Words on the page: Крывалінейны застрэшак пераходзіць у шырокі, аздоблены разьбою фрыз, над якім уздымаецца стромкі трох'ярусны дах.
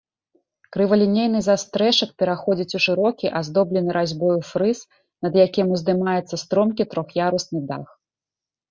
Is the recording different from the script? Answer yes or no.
no